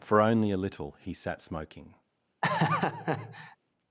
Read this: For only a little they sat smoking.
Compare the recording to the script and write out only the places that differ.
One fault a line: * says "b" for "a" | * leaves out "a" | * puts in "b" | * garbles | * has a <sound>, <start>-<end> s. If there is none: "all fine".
* says "he" for "they"
* has a laugh, 2.4-3.6 s